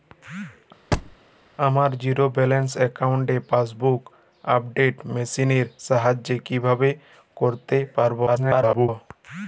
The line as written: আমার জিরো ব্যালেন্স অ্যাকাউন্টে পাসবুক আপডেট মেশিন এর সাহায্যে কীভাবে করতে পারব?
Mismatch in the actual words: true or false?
true